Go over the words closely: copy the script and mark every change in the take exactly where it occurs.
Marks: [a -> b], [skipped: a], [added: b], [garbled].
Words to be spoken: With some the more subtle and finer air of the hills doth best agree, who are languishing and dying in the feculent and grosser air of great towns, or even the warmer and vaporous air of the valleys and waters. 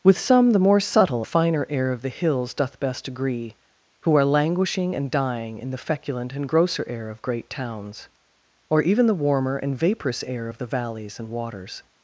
With some the more subtle [skipped: and] finer air of the hills doth best agree, who are languishing and dying in the feculent and grosser air of great towns, or even the warmer and vaporous air of the valleys and waters.